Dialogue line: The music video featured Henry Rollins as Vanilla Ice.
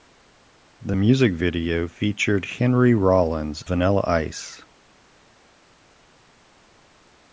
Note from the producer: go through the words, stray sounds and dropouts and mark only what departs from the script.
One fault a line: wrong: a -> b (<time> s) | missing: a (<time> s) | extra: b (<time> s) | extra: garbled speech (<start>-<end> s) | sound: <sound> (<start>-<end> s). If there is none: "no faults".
missing: as (3.7 s)